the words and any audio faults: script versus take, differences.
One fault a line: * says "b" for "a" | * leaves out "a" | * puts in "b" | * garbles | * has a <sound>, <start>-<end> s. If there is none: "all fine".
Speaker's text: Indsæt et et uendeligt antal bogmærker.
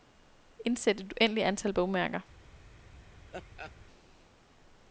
* leaves out "et"
* has a laugh, 3.3-3.7 s